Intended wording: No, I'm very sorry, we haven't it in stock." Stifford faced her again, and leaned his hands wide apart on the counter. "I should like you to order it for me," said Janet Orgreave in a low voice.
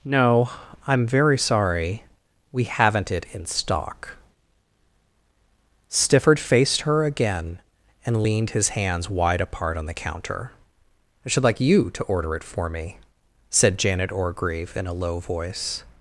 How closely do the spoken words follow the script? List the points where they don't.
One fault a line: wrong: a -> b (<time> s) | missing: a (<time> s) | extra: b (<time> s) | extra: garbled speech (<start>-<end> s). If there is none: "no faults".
no faults